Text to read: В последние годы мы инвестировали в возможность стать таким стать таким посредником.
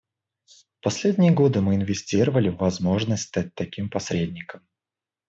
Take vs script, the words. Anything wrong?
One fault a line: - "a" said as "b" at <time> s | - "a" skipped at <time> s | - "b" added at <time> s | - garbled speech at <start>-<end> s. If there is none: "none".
- "стать таким" skipped at 3.9 s